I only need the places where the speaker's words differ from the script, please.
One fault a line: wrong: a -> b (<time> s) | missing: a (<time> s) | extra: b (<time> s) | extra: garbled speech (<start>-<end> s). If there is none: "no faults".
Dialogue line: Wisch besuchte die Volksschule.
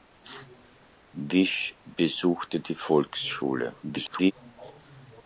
extra: garbled speech (3.8-4.3 s)